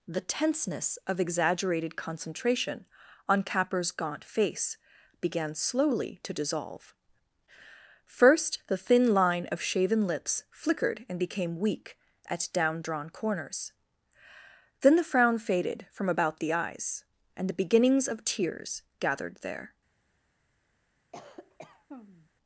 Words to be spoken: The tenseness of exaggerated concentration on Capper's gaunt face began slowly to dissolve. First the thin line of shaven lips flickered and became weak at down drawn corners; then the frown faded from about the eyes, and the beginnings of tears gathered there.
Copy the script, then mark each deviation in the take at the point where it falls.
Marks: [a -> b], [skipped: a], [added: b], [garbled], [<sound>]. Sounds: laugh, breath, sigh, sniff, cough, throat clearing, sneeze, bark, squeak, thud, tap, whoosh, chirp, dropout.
The tenseness of exaggerated concentration on Capper's gaunt face began slowly to dissolve. First the thin line of shaven lips flickered and became weak at down drawn corners; then the frown faded from about the eyes, and the beginnings of tears gathered there. [cough]